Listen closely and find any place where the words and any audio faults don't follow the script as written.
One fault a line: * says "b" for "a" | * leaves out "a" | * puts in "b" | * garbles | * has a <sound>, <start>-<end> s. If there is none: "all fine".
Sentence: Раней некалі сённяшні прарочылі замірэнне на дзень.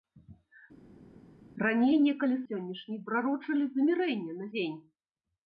all fine